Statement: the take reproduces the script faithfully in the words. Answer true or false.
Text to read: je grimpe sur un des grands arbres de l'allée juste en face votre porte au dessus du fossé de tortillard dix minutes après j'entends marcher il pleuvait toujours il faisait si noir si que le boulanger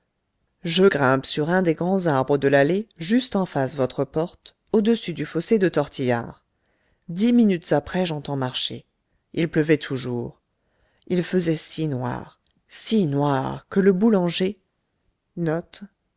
false